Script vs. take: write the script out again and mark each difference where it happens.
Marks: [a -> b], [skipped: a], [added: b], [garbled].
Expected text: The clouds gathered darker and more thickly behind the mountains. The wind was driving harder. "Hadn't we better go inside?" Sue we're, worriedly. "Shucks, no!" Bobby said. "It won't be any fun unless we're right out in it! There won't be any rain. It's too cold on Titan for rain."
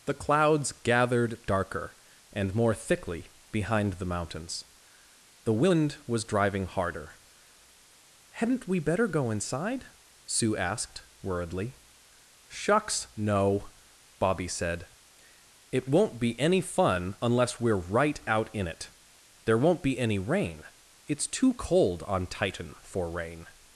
The clouds gathered darker and more thickly behind the mountains. The wind was driving harder. "Hadn't we better go inside?" Sue [we're, -> asked] worriedly. "Shucks, no!" Bobby said. "It won't be any fun unless we're right out in it! There won't be any rain. It's too cold on Titan for rain."